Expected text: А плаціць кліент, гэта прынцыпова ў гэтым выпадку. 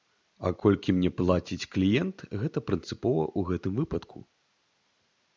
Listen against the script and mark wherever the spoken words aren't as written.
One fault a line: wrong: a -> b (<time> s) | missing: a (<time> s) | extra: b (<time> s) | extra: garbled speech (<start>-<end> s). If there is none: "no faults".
extra: колькі мне (0.6 s)